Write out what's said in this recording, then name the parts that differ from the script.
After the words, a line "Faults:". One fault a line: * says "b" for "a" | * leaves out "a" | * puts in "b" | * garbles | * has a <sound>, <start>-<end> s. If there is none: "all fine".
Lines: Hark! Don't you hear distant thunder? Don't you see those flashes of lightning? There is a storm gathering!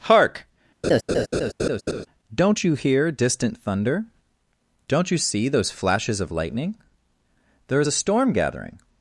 Hark! Don't you hear distant thunder? Don't you see those flashes of lightning? There is a storm gathering!
Faults:
* has a laugh, 0.8-2.1 s